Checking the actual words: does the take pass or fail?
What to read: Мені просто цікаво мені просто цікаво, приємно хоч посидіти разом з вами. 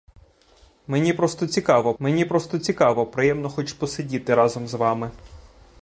pass